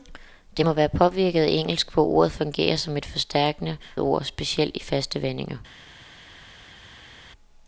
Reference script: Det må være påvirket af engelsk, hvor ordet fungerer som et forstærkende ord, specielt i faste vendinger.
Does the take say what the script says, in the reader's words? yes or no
yes